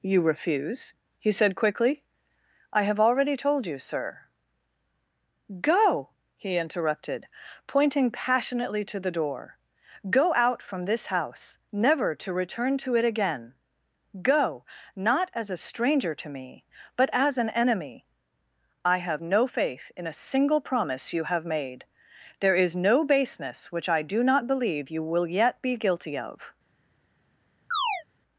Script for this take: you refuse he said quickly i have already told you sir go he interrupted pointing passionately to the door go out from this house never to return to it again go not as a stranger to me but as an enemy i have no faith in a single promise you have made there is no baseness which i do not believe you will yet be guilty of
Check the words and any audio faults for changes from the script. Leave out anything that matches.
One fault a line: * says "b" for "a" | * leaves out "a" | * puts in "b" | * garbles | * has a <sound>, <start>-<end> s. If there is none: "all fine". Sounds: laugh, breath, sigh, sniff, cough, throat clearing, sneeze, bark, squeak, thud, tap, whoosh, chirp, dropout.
* has a chirp, 27.7-28.0 s